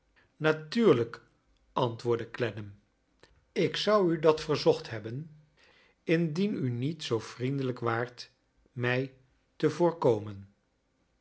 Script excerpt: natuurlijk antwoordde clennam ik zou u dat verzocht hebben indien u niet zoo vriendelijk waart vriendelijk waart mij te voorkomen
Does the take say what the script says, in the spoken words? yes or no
no